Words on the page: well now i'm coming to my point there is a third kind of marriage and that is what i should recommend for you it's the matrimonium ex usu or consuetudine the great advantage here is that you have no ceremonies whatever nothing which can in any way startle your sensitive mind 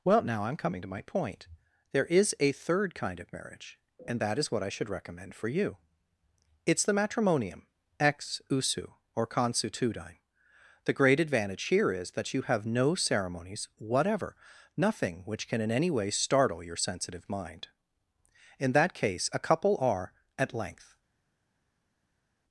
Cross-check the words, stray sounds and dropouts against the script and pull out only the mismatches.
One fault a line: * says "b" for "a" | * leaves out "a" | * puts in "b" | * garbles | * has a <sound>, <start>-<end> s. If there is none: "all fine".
* puts in "in that case a couple are at length"